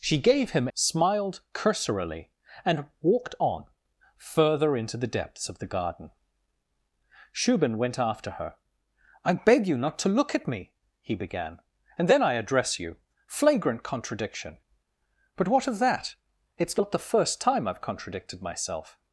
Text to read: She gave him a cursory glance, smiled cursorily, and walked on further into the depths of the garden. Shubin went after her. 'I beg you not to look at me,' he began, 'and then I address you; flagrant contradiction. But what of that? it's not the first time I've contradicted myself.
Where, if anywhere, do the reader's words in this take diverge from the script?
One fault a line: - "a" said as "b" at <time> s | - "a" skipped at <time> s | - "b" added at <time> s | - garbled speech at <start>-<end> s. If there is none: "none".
- "a cursory glance" skipped at 0.7 s